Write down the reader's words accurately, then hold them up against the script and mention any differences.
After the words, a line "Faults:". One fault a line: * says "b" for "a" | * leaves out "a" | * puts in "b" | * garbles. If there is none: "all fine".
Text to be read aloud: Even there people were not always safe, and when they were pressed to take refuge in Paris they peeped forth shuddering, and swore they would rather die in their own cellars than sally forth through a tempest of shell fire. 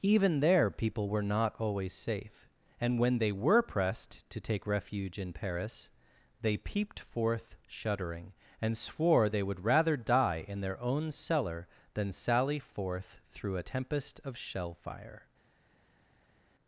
Even there people were not always safe, and when they were pressed to take refuge in Paris they peeped forth shuddering, and swore they would rather die in their own cellar than sally forth through a tempest of shell fire.
Faults:
* says "cellar" for "cellars"